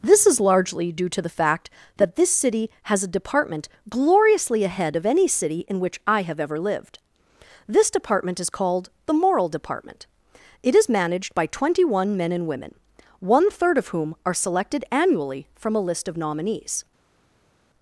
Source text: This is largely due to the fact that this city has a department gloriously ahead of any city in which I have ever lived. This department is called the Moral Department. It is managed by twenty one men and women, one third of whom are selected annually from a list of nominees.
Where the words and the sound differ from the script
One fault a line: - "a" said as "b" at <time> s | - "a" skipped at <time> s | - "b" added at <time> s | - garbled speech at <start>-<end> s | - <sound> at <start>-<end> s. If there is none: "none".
none